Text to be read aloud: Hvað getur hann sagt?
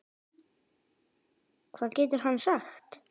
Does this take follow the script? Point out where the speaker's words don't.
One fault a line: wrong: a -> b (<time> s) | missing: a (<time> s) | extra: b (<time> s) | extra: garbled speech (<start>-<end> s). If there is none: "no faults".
no faults